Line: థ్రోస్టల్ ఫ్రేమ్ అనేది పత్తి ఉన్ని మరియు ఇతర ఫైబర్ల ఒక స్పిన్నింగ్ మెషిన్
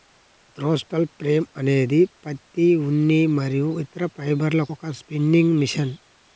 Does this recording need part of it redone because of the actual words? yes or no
no